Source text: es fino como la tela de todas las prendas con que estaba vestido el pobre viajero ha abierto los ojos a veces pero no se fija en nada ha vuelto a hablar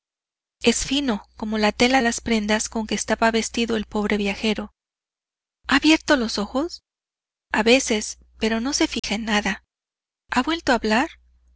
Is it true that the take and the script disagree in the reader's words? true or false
true